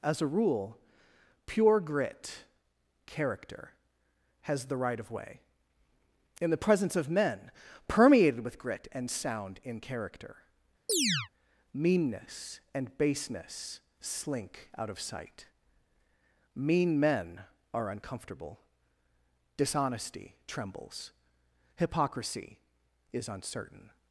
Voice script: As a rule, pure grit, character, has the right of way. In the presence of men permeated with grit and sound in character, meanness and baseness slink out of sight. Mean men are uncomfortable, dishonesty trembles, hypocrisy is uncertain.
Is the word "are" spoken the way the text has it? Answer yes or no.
yes